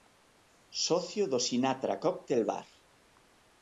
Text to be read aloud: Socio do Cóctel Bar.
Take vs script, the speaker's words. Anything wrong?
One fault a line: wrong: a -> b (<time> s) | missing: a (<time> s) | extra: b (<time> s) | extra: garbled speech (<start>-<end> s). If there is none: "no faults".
extra: Sinatra (1.5 s)